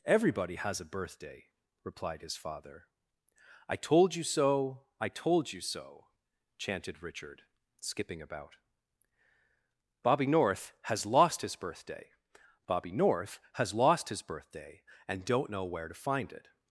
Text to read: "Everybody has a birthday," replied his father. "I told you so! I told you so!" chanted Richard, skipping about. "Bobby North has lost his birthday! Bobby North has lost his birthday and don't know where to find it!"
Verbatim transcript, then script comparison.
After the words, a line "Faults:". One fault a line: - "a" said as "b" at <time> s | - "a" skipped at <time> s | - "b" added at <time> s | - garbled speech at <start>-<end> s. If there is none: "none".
"Everybody has a birthday," replied his father. "I told you so! I told you so!" chanted Richard, skipping about. "Bobby North has lost his birthday! Bobby North has lost his birthday and don't know where to find it!"
Faults:
none